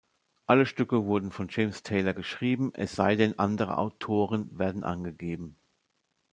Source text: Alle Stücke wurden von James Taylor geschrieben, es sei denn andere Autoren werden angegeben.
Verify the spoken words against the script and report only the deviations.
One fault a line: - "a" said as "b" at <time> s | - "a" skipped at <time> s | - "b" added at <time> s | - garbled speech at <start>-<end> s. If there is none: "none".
none